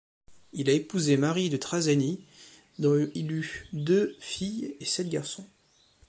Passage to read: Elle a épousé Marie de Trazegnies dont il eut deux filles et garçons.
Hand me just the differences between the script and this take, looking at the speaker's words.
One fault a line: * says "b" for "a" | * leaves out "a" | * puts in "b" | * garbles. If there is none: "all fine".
* says "Il" for "Elle"
* puts in "sept"